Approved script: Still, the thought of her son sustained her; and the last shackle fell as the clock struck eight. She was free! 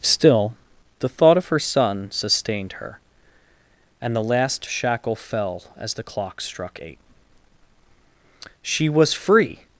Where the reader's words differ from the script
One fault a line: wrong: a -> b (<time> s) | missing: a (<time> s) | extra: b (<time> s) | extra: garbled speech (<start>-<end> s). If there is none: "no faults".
no faults